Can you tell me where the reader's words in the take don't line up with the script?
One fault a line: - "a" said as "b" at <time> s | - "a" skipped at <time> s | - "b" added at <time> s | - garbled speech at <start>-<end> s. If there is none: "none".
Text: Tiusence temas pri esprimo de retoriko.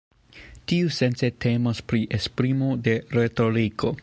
none